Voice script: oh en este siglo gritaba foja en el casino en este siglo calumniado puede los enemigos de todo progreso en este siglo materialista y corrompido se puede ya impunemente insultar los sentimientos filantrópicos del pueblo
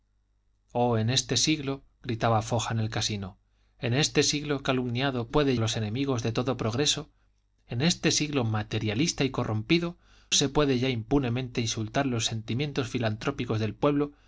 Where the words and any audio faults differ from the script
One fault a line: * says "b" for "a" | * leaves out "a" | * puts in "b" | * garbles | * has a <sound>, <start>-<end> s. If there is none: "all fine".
all fine